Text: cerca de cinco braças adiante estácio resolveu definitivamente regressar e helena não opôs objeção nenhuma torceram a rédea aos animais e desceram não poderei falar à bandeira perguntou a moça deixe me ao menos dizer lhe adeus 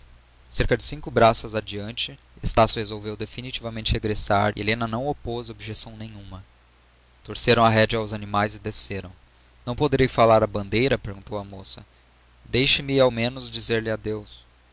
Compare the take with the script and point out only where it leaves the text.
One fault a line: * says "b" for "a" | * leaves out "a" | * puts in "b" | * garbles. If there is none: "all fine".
all fine